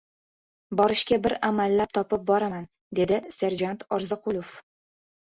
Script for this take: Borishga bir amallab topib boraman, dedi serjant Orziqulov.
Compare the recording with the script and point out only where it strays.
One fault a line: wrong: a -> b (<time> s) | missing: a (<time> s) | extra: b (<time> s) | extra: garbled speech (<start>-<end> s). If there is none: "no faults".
no faults